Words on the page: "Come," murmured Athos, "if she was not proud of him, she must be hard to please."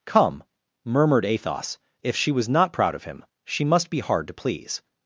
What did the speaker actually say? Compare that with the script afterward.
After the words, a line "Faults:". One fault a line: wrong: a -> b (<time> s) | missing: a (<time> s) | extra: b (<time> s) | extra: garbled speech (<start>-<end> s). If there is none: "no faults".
"Come," murmured Athos, "if she was not proud of him, she must be hard to please."
Faults:
no faults